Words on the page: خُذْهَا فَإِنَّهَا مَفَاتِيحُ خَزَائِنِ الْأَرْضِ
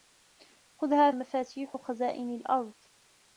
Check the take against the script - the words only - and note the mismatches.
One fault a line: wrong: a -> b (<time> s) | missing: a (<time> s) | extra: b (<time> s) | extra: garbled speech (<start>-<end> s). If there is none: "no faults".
missing: فَإِنَّهَا (1.1 s)